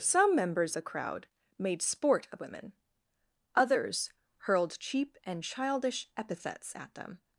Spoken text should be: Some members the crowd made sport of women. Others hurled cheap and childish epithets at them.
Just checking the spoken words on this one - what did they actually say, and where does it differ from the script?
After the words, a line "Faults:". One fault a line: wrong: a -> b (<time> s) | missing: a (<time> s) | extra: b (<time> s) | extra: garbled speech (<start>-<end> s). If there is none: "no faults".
Some members the crowd made sport of women. Others hurled cheap and childish epithets at them.
Faults:
no faults